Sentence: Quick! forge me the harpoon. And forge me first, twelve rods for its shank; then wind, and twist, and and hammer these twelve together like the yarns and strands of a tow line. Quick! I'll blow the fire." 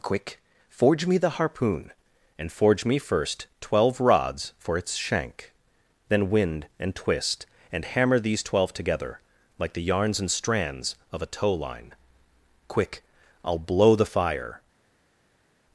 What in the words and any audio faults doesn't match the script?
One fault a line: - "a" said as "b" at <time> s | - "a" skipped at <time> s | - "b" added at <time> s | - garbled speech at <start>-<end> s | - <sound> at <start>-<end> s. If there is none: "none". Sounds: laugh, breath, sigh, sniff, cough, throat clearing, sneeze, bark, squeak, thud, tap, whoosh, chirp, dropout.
- "and" skipped at 7.8 s